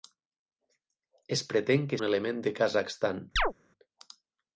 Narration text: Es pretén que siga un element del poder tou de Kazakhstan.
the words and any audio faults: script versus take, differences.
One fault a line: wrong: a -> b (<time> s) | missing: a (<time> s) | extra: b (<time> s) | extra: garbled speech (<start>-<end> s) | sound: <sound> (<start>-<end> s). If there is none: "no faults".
missing: siga (2.0 s)
missing: del poder tou (2.4 s)
sound: chirp (3.4-3.5 s)